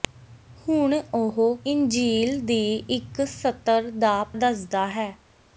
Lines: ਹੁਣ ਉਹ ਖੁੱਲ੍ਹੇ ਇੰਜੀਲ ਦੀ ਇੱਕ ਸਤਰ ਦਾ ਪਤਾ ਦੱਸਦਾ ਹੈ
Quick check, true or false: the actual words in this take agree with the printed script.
false